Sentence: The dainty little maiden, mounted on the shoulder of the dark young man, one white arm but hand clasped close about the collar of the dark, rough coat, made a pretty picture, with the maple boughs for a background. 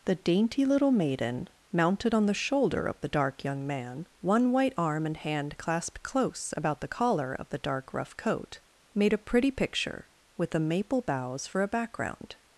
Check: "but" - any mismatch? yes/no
yes